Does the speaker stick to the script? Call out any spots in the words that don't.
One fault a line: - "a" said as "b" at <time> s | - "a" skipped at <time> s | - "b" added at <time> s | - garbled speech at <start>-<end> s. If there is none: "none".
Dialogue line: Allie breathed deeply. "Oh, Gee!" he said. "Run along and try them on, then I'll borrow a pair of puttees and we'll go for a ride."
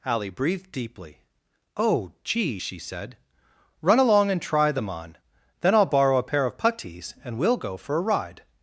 - "he" said as "she" at 2.6 s